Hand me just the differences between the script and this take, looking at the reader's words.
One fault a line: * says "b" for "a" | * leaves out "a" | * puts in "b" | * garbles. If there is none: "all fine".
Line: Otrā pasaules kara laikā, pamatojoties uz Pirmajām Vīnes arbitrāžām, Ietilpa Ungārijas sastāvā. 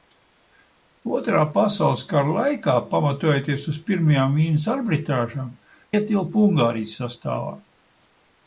all fine